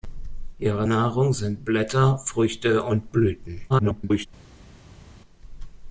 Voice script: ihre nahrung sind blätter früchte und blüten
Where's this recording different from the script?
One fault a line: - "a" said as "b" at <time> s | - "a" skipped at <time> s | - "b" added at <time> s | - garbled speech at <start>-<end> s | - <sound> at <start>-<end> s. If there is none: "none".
- garbled speech at 3.7-4.3 s